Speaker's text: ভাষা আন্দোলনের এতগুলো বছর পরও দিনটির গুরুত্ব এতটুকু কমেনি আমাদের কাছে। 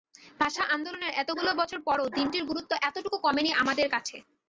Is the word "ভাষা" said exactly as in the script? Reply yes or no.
yes